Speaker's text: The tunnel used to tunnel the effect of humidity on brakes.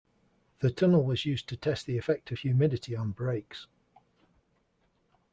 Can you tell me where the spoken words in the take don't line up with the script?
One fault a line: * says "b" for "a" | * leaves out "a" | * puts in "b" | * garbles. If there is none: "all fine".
* puts in "was"
* says "test" for "tunnel"